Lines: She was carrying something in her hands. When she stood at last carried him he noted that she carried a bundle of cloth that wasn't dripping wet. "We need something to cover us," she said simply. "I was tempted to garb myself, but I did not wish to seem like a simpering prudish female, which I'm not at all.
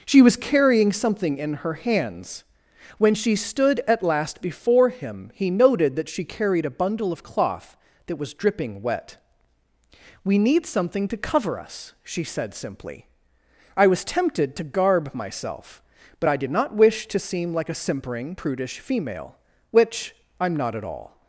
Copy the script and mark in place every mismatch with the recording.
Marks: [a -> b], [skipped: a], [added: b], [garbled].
She was carrying something in her hands. When she stood at last [carried -> before] him he noted that she carried a bundle of cloth that [wasn't -> was] dripping wet. "We need something to cover us," she said simply. "I was tempted to garb myself, but I did not wish to seem like a simpering prudish female, which I'm not at all.